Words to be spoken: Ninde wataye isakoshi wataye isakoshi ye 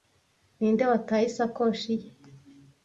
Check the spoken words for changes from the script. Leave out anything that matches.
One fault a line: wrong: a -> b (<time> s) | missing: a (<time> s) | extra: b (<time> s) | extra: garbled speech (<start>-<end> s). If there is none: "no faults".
missing: wataye isakoshi (1.9 s)